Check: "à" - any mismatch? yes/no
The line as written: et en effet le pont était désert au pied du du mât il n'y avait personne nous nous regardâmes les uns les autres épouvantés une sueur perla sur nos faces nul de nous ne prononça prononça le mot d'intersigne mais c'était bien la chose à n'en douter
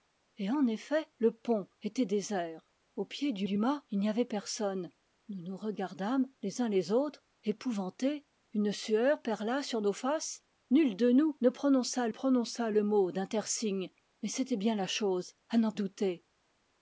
no